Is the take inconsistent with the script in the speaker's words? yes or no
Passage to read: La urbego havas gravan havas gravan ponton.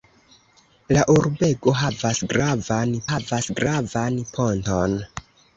no